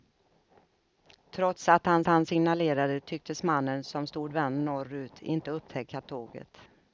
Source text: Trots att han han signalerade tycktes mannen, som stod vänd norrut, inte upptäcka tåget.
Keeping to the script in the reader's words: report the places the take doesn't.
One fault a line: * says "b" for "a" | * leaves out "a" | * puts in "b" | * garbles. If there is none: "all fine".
all fine